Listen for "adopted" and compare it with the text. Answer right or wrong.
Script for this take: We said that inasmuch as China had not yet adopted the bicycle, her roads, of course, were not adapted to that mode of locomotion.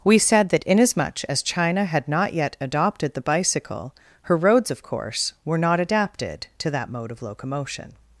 right